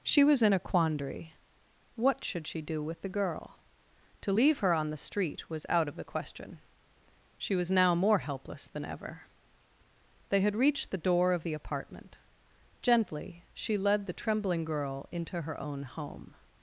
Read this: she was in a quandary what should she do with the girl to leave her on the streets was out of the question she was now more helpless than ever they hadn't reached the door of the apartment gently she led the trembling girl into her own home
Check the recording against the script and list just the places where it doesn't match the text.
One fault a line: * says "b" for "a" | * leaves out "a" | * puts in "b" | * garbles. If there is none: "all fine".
* says "street" for "streets"
* says "had" for "hadn't"